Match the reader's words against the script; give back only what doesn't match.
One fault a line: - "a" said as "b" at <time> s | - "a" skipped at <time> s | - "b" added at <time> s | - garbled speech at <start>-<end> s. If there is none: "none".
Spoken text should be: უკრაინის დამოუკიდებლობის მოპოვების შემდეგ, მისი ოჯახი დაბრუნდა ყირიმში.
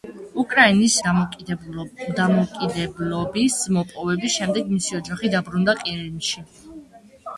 none